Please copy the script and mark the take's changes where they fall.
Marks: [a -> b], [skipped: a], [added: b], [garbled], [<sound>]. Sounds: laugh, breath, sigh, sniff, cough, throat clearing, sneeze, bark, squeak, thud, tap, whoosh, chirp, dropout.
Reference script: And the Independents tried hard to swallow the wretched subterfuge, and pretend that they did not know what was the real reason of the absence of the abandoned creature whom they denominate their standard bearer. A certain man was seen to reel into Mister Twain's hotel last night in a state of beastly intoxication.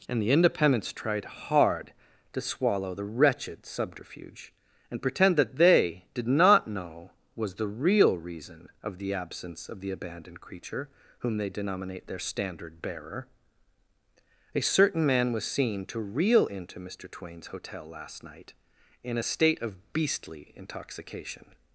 And the Independents tried hard to swallow the wretched subterfuge, and pretend that they did not know [skipped: what] was the real reason of the absence of the abandoned creature whom they denominate their standard bearer. A certain man was seen to reel into Mister Twain's hotel last night in a state of beastly intoxication.